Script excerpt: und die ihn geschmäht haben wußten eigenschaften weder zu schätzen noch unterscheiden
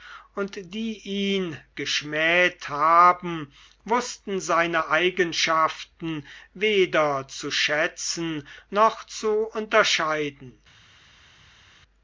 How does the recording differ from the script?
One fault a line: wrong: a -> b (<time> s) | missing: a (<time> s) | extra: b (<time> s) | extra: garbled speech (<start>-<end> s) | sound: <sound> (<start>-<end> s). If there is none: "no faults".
extra: seine (4.4 s)
extra: zu (9.0 s)